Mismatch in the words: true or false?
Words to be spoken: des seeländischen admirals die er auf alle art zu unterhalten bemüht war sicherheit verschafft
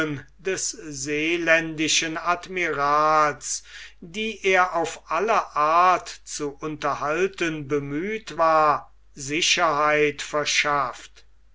false